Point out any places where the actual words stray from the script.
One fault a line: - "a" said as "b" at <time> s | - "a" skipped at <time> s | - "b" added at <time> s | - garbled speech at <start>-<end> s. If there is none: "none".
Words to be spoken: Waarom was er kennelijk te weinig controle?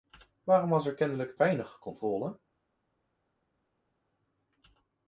- "te" skipped at 1.4 s